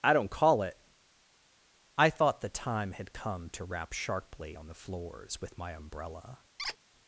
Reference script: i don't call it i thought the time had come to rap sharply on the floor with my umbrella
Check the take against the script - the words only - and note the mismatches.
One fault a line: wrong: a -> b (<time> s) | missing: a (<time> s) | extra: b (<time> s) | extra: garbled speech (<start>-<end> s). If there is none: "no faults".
wrong: floor -> floors (4.7 s)